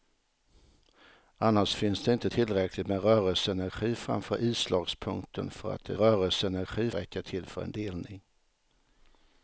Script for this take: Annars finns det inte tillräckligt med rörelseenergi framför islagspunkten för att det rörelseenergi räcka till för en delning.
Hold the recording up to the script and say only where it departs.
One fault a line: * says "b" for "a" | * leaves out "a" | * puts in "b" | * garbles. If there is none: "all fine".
all fine